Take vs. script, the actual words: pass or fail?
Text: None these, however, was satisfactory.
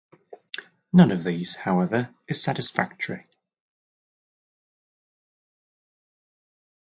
fail